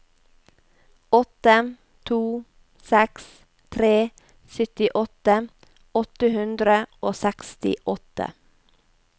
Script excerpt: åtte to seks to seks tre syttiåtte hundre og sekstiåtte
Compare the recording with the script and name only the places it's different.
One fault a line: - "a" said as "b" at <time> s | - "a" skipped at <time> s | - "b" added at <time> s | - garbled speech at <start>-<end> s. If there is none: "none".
- "to seks" skipped at 3.3 s
- "åtte" added at 6.0 s